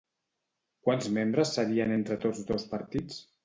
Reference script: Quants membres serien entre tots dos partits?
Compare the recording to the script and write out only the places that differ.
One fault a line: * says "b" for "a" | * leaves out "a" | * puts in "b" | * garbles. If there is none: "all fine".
all fine